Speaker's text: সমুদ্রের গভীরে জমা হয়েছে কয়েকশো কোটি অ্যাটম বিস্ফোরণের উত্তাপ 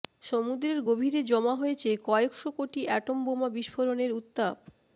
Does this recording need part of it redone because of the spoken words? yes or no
yes